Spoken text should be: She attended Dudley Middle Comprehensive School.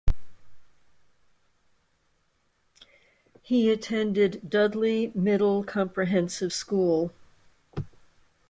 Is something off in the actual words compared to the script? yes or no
yes